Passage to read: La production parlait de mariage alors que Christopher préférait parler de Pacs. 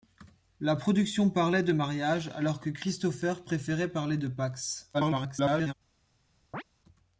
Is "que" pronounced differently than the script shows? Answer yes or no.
no